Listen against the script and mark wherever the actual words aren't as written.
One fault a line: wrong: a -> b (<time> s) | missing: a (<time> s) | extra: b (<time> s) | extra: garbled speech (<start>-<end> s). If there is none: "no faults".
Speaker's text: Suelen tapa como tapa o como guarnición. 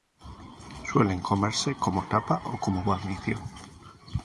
wrong: tapa -> comerse (1.2 s)